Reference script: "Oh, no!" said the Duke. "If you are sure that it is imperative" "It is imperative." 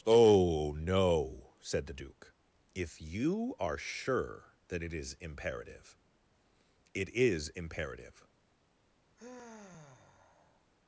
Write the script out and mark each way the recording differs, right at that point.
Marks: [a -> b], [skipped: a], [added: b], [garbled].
"Oh, no!" said the Duke. "If you are sure that it is imperative" "It is imperative."